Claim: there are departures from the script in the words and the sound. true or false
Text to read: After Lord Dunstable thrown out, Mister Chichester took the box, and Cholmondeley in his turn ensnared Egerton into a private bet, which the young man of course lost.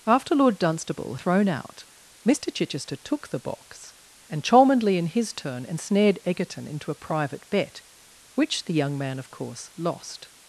false